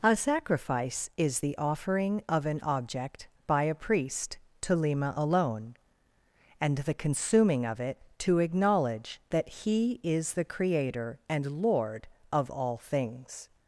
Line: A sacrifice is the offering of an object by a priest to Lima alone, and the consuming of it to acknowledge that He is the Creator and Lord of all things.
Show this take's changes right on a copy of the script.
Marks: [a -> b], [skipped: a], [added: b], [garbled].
A sacrifice is the offering of an object by a priest to Lima alone, and the consuming of it to acknowledge that He is the Creator and Lord of all things.